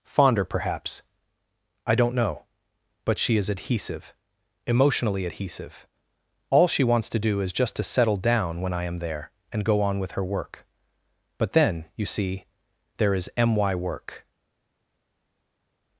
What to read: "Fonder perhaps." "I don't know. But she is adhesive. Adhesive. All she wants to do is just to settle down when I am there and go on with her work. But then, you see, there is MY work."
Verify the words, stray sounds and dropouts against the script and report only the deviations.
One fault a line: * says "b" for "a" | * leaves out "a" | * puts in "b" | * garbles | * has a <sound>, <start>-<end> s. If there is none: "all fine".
* puts in "Emotionally"